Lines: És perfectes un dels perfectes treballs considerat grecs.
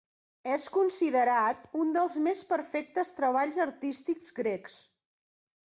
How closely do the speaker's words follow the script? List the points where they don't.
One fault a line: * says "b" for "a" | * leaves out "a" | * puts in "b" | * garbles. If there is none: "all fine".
* says "considerat" for "perfectes"
* puts in "més"
* says "artístics" for "considerat"